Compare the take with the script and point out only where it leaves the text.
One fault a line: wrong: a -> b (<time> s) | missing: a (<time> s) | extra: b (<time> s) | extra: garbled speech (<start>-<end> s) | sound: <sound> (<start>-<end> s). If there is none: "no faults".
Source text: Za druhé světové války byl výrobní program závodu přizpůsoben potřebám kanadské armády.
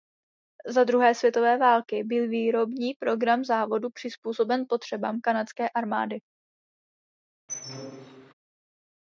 sound: squeak (7.5-8.3 s)